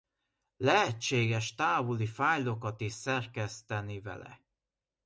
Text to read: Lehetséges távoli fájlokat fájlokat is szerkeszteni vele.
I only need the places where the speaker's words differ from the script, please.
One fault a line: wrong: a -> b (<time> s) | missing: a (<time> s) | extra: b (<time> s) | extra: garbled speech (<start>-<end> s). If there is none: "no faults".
missing: fájlokat (2.8 s)